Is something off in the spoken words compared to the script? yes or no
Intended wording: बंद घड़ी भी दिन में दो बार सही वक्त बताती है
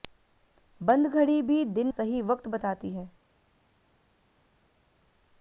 yes